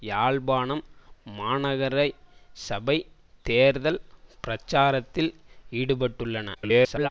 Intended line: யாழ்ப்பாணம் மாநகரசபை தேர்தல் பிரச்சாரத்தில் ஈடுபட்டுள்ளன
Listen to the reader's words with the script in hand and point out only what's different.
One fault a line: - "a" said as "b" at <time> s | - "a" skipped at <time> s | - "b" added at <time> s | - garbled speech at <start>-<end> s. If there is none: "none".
- garbled speech at 6.5-7.1 s